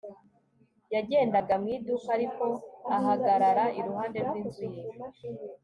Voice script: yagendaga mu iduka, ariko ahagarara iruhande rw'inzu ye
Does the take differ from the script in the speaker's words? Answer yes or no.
no